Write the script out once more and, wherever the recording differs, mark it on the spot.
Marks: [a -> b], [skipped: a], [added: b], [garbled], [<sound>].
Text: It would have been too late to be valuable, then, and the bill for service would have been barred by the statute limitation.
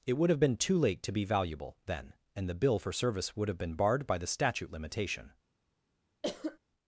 It would have been too late to be valuable, then, and the bill for service would have been barred by the statute limitation. [cough]